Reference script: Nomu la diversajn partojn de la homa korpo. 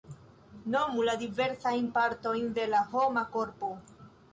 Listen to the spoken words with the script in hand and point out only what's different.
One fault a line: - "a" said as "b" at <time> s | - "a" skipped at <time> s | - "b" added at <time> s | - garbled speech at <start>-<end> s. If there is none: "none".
none